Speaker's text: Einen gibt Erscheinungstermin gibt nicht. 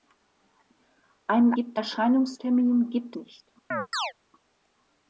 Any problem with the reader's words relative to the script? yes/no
no